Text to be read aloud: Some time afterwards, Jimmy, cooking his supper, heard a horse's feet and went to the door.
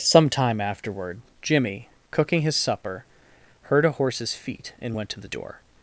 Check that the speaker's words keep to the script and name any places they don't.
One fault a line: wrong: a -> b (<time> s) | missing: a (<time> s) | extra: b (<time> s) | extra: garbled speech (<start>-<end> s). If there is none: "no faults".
wrong: afterwards -> afterward (0.6 s)